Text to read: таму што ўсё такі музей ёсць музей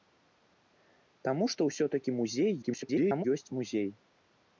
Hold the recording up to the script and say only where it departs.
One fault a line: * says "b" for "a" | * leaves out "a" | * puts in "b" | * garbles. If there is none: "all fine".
* garbles